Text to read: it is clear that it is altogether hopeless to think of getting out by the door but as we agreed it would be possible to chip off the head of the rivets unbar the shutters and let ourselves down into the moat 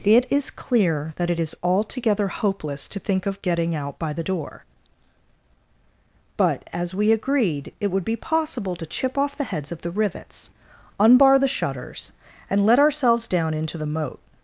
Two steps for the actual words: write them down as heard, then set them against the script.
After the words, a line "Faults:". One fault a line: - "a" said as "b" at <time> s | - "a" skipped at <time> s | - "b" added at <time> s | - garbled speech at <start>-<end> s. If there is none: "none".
it is clear that it is altogether hopeless to think of getting out by the door but as we agreed it would be possible to chip off the heads of the rivets unbar the shutters and let ourselves down into the moat
Faults:
- "head" said as "heads" at 9.4 s